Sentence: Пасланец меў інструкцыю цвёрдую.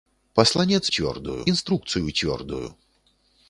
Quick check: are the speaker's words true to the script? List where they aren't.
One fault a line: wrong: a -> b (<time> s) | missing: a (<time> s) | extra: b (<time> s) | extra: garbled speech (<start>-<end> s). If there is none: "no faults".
wrong: меў -> цвёрдую (0.9 s)